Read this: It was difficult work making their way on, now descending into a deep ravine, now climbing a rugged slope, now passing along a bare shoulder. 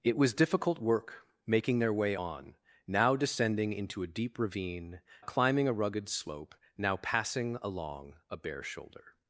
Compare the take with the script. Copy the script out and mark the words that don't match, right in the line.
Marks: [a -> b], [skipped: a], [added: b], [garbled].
It was difficult work making their way on, now descending into a deep ravine, [skipped: now] climbing a rugged slope, now passing along a bare shoulder.